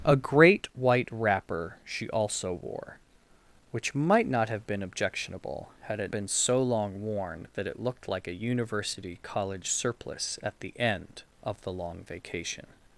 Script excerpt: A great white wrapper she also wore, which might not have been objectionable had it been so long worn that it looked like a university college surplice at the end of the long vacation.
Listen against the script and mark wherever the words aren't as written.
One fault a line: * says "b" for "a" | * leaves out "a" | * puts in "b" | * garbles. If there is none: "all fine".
all fine